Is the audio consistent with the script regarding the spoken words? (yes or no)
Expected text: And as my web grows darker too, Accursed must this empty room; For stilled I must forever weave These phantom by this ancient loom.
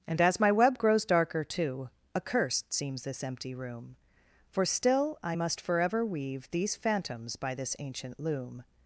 no